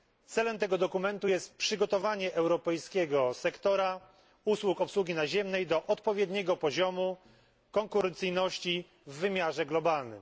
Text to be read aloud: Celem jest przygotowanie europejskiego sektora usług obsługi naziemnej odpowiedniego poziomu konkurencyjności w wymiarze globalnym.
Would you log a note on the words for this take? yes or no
yes